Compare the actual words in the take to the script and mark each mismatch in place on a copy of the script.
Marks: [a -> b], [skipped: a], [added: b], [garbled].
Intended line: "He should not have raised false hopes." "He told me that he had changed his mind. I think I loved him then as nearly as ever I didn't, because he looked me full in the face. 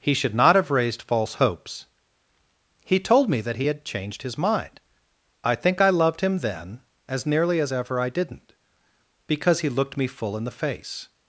"He should not have raised false hopes." "He told me that he had changed his mind. I think I loved him then as nearly as ever I didn't, because he looked me full in the face.